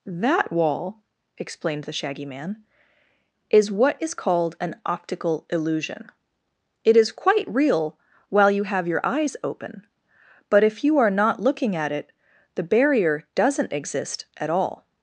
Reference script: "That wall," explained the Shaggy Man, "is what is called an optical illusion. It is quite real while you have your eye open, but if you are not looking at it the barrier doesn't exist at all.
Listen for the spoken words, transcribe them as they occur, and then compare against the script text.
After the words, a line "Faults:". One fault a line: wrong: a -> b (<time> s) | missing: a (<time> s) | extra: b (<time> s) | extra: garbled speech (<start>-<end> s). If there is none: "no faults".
"That wall," explained the Shaggy Man, "is what is called an optical illusion. It is quite real while you have your eyes open, but if you are not looking at it the barrier doesn't exist at all.
Faults:
wrong: eye -> eyes (9.0 s)